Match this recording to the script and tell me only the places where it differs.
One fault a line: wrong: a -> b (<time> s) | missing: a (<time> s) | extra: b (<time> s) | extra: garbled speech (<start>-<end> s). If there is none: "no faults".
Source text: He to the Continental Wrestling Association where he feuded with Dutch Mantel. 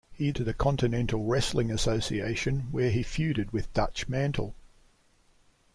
no faults